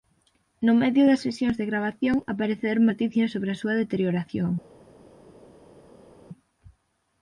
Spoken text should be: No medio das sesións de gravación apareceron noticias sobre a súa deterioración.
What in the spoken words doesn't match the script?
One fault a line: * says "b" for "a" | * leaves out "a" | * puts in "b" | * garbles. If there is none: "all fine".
all fine